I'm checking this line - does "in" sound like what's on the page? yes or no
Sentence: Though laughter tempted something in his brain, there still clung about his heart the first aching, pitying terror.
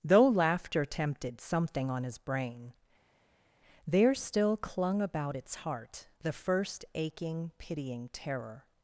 no